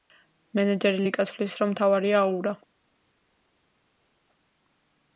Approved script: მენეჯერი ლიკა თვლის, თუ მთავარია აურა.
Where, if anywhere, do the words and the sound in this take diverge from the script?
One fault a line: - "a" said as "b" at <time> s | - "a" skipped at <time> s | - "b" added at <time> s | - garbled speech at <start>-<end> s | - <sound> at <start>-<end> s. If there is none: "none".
- "თუ" said as "რომ" at 1.6 s